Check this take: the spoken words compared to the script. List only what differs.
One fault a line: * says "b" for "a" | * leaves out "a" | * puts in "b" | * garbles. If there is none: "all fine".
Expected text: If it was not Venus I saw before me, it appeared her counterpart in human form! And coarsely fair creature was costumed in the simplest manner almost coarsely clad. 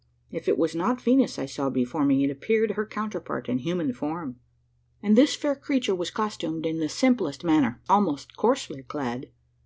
* says "this" for "coarsely"